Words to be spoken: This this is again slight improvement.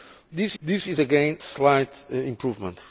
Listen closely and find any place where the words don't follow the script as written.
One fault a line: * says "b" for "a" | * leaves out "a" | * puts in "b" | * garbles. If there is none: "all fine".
all fine